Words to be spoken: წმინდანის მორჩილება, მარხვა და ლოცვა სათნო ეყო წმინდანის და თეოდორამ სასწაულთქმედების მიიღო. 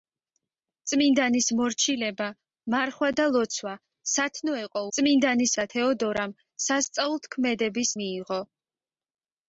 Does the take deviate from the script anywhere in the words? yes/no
no